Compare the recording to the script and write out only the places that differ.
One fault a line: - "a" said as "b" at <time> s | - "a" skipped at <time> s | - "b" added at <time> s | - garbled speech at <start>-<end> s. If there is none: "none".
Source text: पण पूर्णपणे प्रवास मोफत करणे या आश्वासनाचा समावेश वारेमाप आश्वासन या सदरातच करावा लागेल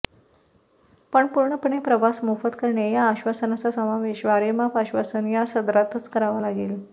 none